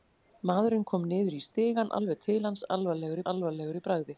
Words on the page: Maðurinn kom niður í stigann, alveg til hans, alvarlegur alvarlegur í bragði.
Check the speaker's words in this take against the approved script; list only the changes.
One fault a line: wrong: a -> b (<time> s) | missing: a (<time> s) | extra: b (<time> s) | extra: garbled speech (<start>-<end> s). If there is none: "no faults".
no faults